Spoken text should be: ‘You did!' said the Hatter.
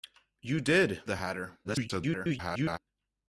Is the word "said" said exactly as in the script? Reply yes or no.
no